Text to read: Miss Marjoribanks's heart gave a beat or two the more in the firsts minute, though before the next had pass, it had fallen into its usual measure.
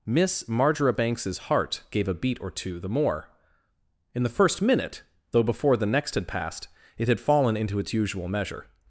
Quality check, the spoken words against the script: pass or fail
fail